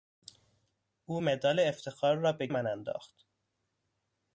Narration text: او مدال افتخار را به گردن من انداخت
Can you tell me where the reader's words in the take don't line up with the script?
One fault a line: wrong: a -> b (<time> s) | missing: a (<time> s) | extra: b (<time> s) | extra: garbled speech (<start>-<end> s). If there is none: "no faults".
missing: گردن (2.5 s)